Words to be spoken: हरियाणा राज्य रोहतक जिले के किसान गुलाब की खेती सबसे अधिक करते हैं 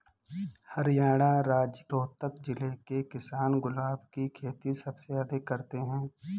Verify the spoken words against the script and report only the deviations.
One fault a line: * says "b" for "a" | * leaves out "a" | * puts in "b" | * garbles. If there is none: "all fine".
all fine